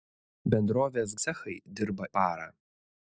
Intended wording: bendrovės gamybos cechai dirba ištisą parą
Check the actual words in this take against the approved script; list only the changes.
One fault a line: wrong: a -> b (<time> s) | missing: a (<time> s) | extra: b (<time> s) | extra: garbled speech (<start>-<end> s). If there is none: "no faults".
missing: gamybos (1.1 s)
missing: ištisą (2.1 s)